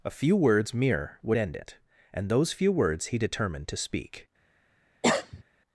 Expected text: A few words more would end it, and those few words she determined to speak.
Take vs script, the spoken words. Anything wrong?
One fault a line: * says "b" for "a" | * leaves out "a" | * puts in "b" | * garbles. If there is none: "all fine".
* says "mere" for "more"
* says "he" for "she"